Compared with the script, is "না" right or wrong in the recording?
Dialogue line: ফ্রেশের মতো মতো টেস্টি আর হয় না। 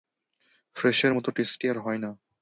right